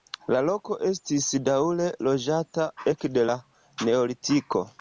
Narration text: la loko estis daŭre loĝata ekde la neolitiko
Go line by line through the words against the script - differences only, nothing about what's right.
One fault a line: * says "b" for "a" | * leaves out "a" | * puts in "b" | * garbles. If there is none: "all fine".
all fine